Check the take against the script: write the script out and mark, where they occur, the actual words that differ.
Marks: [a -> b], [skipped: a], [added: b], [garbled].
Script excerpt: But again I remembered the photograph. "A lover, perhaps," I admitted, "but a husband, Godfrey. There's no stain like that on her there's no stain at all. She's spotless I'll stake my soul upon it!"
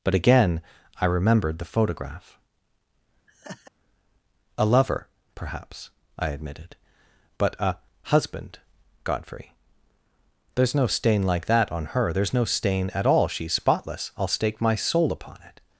But again I remembered the photograph. "A lover, perhaps," I admitted, "but a husband, Godfrey. There's no stain like that on her there's no stain at all. She's spotless I'll stake my soul upon it!"